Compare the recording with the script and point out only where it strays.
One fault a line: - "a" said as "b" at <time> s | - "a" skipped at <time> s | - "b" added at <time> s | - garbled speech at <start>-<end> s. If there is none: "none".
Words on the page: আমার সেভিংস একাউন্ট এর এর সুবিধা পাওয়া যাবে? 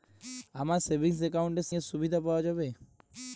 none